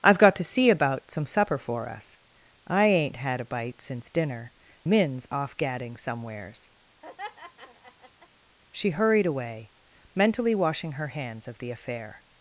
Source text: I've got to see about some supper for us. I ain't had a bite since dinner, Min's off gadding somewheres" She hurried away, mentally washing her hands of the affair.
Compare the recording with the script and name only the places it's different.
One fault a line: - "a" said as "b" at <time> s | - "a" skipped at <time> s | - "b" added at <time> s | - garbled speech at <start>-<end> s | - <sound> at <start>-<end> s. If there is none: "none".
- laugh at 7.0-8.3 s